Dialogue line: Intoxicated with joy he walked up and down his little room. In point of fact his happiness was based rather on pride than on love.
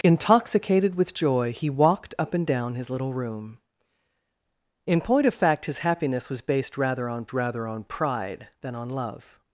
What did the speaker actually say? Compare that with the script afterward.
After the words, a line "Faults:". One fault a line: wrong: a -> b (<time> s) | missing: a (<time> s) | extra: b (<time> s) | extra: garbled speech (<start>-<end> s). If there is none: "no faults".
Intoxicated with joy he walked up and down his little room. In point of fact his happiness was based rather on rather on pride than on love.
Faults:
extra: rather on (7.3 s)